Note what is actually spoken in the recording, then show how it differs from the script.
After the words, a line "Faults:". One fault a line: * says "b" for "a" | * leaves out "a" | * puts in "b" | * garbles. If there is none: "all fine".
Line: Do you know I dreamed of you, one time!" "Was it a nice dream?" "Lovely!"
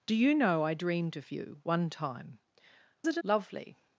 Do you know I dreamed of you, one time!" "It a?" "Lovely!"
Faults:
* leaves out "Was"
* leaves out "nice dream"